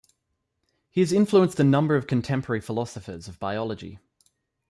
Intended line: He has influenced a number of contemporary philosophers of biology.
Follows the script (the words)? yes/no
yes